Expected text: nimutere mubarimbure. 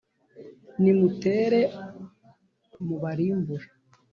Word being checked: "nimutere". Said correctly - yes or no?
yes